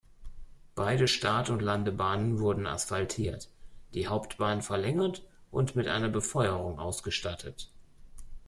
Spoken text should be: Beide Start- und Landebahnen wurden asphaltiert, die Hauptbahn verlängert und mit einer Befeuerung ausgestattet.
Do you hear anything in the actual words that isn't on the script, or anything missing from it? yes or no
no